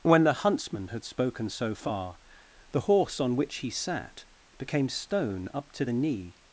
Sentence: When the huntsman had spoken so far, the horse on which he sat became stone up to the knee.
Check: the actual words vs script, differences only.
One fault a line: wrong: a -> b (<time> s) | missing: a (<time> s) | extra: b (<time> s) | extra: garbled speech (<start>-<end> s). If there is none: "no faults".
no faults